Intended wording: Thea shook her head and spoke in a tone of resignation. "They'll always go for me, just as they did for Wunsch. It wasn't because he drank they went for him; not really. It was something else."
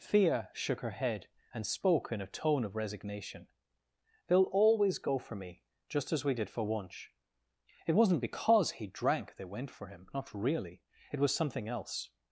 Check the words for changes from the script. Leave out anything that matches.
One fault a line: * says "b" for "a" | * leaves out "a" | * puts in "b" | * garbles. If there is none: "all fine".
* says "we" for "they"